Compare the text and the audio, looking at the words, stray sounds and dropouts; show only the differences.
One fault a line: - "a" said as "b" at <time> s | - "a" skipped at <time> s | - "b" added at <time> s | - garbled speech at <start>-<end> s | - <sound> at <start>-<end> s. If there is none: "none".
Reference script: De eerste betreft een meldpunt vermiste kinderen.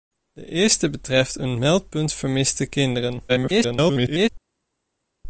- garbled speech at 3.3-4.3 s